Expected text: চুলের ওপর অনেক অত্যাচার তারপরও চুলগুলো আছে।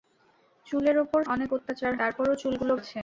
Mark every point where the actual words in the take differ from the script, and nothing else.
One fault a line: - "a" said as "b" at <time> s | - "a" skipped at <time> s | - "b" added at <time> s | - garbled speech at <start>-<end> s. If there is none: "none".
none